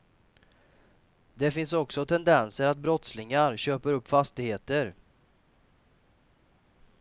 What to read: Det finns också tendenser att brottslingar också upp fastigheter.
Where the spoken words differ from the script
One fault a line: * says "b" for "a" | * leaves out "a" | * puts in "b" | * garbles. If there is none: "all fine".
* says "köper" for "också"